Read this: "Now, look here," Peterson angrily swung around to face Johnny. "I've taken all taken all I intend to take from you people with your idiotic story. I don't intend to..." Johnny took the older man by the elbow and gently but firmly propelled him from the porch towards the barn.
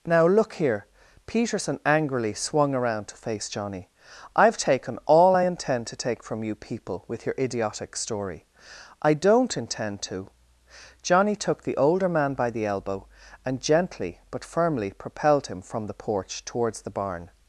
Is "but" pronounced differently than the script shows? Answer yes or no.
no